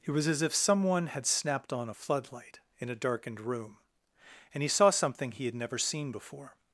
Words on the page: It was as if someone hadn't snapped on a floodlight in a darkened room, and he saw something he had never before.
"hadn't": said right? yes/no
no